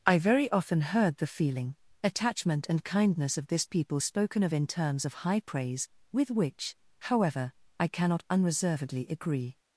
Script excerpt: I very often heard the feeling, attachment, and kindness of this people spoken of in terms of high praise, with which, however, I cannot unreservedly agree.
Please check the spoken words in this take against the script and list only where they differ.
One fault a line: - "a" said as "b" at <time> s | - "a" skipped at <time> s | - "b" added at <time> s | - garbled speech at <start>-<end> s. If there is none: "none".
none